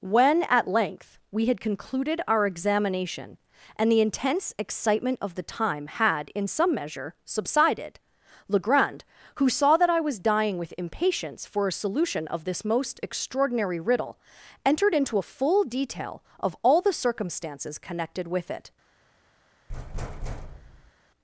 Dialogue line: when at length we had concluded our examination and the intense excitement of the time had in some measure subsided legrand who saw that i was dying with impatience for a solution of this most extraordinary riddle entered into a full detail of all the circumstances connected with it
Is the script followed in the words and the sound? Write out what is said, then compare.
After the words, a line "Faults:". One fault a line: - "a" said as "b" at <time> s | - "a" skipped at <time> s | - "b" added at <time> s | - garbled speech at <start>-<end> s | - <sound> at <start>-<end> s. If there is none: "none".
when at length we had concluded our examination and the intense excitement of the time had in some measure subsided legrand who saw that i was dying with impatience for a solution of this most extraordinary riddle entered into a full detail of all the circumstances connected with it
Faults:
- thud at 19.7-20.9 s